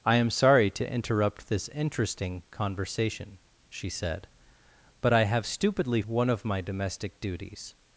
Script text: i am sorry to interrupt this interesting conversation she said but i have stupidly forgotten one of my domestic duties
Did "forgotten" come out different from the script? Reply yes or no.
yes